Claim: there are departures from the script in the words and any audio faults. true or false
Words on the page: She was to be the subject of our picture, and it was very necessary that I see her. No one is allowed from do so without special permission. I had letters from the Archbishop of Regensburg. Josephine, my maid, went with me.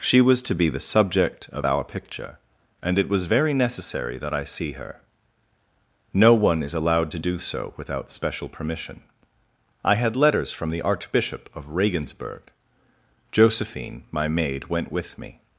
true